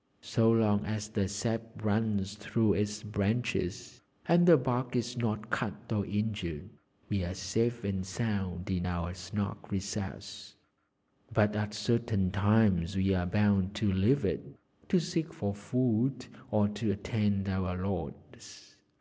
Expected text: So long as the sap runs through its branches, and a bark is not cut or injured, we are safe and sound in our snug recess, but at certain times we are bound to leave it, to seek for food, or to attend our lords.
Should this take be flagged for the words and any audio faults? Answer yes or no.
yes